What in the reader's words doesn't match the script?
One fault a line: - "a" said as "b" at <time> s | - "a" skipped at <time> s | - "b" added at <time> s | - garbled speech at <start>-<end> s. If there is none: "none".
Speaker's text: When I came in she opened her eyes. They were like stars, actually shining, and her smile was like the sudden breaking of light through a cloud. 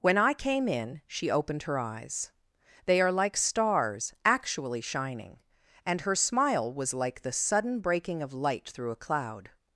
- "were" said as "are" at 3.0 s